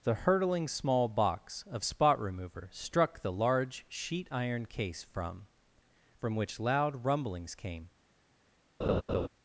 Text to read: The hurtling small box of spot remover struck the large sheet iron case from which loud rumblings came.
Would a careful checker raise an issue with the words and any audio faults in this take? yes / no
yes